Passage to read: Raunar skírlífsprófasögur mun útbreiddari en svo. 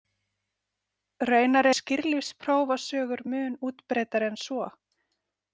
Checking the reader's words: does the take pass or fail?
pass